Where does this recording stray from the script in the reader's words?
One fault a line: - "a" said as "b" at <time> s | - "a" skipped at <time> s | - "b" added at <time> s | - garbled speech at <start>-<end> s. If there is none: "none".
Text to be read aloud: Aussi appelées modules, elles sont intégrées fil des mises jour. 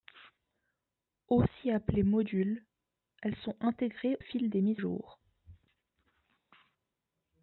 none